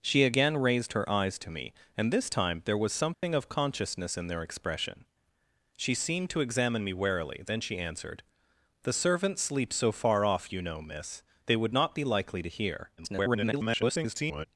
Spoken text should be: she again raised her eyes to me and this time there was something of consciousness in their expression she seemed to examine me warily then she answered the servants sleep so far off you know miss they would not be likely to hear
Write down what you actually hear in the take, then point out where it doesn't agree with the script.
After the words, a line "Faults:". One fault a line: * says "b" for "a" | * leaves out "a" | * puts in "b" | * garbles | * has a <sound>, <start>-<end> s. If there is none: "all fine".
she again raised her eyes to me and this time there was something of consciousness in their expression she seemed to examine me warily then she answered the servants sleep so far off you know miss they would not be likely to hear [garbled]
Faults:
* has a dropout, 3.1-3.2 s
* garbles